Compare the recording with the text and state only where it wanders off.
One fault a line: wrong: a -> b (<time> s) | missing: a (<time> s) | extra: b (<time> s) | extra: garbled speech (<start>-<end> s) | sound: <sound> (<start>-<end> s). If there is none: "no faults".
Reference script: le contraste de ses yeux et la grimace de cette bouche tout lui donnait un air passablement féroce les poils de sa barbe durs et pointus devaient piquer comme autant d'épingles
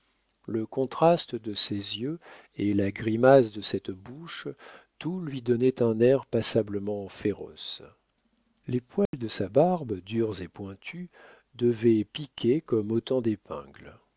sound: dropout (9.1-9.1 s)